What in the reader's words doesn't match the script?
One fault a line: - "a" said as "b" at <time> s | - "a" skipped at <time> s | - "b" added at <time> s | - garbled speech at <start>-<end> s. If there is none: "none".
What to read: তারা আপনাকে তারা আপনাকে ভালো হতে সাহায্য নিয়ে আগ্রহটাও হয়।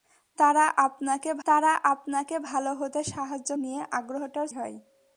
none